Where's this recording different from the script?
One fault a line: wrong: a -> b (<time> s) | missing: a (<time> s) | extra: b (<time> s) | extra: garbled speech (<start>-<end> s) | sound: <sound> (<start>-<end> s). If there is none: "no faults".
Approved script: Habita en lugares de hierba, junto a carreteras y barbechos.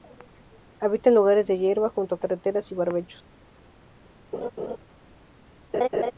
sound: laugh (4.3-4.8 s)
sound: laugh (5.7-6.1 s)